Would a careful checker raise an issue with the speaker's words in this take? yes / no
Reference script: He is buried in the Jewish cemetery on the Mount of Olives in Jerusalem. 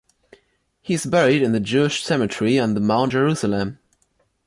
yes